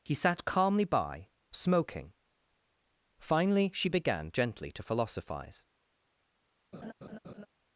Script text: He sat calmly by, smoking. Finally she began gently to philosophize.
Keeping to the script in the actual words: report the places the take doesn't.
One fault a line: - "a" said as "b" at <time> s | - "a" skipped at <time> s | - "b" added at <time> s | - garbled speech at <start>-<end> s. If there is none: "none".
none